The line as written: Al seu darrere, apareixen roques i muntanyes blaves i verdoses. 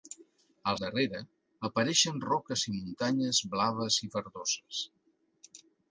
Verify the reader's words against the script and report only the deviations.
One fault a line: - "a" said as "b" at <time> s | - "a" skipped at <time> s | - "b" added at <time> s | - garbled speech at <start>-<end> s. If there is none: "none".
- "seu" skipped at 0.8 s